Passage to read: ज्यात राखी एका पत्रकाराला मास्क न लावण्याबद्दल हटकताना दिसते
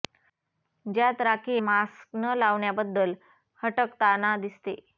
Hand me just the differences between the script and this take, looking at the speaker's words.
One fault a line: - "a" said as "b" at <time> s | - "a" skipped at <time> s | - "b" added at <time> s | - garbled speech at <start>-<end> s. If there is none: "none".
- "एका पत्रकाराला" skipped at 1.6 s